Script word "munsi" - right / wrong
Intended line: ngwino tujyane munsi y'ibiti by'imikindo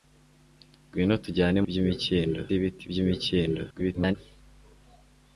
wrong